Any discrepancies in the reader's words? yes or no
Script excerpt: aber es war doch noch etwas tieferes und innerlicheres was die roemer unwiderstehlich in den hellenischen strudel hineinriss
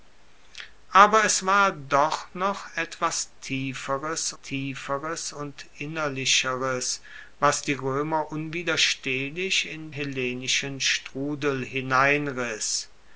yes